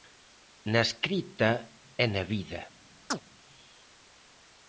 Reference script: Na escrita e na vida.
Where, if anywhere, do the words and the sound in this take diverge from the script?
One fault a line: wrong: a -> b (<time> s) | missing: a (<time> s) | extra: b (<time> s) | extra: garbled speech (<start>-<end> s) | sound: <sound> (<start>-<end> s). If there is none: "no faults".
sound: chirp (3.1-3.2 s)